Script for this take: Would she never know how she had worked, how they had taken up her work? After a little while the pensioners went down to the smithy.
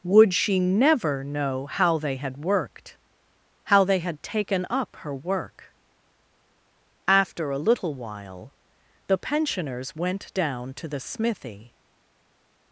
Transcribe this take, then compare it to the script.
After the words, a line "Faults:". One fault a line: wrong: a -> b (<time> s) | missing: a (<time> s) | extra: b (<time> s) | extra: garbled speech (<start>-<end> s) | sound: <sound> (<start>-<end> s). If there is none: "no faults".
Would she never know how they had worked, how they had taken up her work? After a little while the pensioners went down to the smithy.
Faults:
wrong: she -> they (2.0 s)